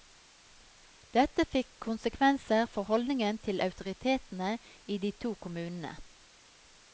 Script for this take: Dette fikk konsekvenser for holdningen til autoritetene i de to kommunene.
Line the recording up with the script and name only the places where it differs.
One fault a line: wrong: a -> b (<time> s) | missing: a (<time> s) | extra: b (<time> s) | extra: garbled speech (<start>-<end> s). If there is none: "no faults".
no faults